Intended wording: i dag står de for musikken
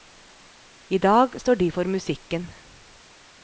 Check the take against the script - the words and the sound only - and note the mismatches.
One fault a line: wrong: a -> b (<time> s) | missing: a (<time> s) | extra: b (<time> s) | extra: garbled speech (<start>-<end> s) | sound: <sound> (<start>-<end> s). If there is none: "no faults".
no faults